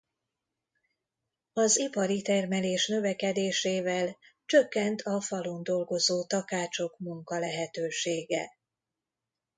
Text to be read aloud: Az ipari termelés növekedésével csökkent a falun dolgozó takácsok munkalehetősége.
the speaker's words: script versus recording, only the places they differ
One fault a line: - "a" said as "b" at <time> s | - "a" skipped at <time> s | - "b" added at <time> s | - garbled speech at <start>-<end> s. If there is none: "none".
none